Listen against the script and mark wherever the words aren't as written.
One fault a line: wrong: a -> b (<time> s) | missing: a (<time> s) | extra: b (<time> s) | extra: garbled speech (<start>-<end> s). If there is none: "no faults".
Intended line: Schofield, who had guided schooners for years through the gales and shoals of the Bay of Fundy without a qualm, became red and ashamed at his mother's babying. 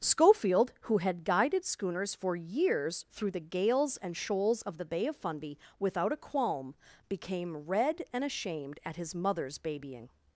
no faults